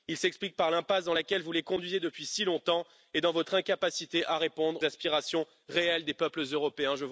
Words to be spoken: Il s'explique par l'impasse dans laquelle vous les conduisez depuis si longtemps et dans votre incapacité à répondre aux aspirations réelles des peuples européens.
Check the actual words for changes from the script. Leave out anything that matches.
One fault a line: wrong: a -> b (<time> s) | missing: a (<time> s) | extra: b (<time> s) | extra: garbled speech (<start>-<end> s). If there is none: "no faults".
missing: aux (4.8 s)